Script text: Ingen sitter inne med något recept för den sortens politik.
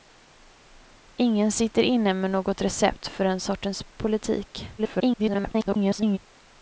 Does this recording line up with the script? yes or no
no